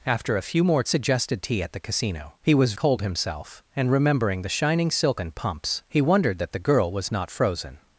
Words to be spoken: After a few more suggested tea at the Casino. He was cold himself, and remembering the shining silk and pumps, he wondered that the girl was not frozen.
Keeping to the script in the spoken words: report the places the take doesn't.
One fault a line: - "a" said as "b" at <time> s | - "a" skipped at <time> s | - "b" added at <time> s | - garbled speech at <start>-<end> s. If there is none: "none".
none